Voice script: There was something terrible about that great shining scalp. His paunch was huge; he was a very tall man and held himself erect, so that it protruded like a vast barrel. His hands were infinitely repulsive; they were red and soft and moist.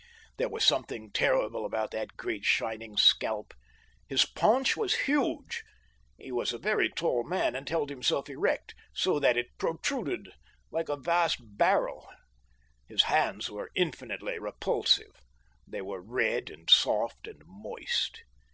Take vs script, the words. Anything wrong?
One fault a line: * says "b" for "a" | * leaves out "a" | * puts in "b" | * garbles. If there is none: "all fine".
all fine